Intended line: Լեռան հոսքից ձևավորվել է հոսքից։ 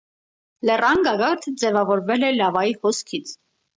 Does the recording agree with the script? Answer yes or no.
no